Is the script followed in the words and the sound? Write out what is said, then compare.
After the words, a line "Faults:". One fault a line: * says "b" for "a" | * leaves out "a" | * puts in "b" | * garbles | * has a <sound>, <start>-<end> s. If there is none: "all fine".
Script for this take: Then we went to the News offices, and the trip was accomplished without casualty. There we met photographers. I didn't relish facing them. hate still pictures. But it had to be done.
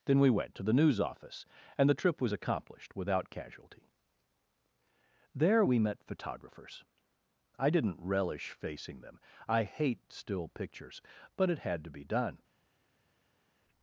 Then we went to the News office, and the trip was accomplished without casualty. There we met photographers. I didn't relish facing them. I hate still pictures. But it had to be done.
Faults:
* says "office" for "offices"
* puts in "I"